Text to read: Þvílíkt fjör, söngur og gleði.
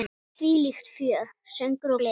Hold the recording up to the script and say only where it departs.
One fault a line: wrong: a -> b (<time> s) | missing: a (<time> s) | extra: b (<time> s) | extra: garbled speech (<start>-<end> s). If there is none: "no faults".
no faults